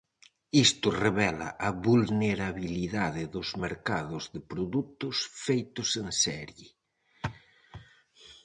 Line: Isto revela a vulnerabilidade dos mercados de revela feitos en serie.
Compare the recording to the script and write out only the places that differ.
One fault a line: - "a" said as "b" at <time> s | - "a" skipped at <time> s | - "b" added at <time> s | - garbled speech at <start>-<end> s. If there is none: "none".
- "revela" said as "produtos" at 4.5 s